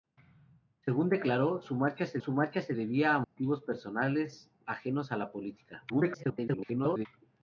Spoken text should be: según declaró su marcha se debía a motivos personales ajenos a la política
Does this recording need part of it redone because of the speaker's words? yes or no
yes